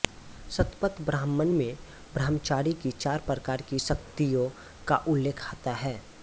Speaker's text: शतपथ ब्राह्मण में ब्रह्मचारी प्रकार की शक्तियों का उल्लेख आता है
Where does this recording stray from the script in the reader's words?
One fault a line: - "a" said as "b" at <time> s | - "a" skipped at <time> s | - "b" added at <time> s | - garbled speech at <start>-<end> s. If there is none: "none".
- "की चार" added at 2.7 s